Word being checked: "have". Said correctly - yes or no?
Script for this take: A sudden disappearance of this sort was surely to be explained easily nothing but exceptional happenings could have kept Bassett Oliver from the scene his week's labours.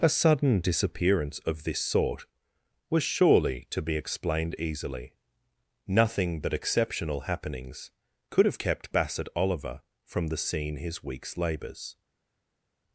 yes